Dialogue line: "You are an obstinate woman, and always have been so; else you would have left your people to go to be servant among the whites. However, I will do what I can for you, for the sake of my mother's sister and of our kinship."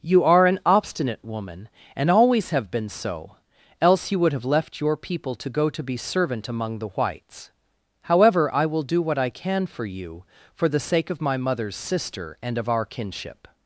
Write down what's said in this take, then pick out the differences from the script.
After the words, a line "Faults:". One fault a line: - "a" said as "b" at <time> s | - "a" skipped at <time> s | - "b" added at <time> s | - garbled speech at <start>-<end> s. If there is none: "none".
"You are an obstinate woman, and always have been so; else you would have left your people to go to be servant among the whites. However, I will do what I can for you, for the sake of my mother's sister and of our kinship."
Faults:
none